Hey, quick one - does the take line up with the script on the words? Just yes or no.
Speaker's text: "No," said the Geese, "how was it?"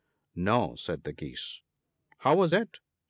yes